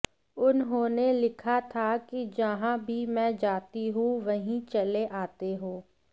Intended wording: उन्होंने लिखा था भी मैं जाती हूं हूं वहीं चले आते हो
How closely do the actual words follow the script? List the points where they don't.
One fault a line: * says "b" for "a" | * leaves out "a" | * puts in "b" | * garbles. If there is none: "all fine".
* puts in "कि जहां"
* leaves out "हूं"